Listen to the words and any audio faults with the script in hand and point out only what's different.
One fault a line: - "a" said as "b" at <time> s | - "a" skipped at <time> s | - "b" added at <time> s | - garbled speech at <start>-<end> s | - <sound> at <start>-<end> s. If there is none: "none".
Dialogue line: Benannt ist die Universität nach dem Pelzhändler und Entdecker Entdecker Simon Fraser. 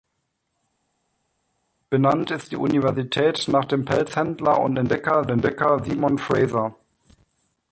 none